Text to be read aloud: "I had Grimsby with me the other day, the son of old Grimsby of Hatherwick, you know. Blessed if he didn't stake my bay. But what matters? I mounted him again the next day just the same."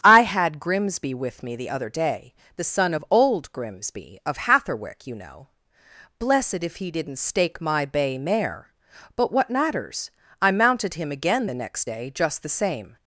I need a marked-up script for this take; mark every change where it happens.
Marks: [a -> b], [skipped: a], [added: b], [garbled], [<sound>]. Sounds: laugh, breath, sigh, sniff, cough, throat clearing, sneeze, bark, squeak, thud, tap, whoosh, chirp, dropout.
"I had Grimsby with me the other day, the son of old Grimsby of Hatherwick, you know. Blessed if he didn't stake my bay. [added: mare] But what matters? I mounted him again the next day just the same."